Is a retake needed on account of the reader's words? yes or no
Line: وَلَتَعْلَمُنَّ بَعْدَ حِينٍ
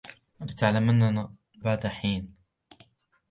no